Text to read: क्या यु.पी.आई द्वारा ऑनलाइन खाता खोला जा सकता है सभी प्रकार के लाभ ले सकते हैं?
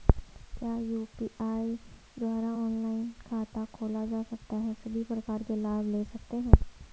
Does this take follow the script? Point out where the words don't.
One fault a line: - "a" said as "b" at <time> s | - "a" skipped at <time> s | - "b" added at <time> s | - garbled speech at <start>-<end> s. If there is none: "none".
none